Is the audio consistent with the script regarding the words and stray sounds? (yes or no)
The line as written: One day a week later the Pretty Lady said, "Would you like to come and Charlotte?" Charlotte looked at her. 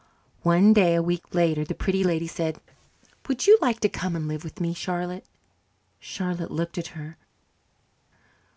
no